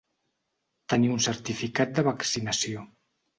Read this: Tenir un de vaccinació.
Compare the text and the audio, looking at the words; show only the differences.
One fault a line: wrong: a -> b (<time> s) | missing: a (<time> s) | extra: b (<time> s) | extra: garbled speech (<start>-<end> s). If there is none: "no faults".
extra: certificat (1.2 s)